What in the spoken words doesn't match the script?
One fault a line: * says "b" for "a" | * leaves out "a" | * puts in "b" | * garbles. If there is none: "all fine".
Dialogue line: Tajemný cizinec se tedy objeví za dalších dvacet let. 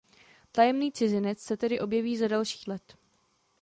* leaves out "dvacet"